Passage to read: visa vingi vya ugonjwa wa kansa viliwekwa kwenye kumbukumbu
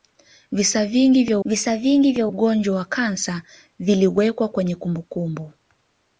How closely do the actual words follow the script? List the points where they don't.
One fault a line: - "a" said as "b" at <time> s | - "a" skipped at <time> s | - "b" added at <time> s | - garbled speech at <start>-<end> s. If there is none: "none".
- "visa vingi vya" added at 1.4 s